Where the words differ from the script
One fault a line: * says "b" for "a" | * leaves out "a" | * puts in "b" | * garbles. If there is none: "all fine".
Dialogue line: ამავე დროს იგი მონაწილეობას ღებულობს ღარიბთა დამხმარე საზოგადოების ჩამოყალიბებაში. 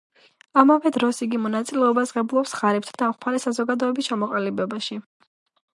all fine